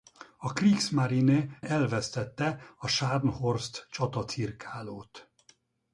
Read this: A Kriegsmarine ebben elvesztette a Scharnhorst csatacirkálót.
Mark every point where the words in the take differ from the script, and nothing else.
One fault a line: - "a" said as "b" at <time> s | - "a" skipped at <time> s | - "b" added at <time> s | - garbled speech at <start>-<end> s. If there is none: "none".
- "ebben" skipped at 1.6 s